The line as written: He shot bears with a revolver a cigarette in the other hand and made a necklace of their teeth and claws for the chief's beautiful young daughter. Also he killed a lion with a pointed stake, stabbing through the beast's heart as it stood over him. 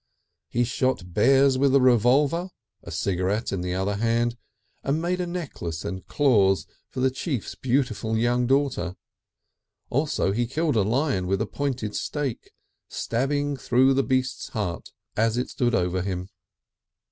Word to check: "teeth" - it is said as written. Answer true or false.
false